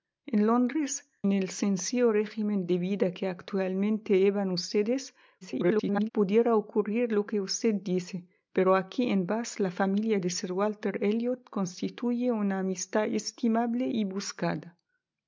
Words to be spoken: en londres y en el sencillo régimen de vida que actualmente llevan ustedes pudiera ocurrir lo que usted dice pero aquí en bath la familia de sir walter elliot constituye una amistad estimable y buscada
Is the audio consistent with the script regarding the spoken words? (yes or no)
no